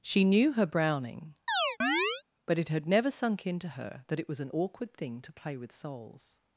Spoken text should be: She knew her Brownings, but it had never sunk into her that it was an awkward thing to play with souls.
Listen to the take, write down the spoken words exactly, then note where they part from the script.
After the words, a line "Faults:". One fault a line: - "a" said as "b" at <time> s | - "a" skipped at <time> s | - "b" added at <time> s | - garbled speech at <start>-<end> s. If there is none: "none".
She knew her Browning, but it had never sunk into her that it was an awkward thing to play with souls.
Faults:
- "Brownings" said as "Browning" at 0.7 s